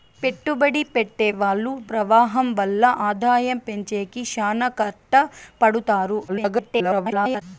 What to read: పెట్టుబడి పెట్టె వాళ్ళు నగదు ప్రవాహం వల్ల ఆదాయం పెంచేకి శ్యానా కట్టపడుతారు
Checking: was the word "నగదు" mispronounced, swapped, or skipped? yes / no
yes